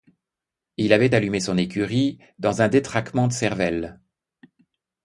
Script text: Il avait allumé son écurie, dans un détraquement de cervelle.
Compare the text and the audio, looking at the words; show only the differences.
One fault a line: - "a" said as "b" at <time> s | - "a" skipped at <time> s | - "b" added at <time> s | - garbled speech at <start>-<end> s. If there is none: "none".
none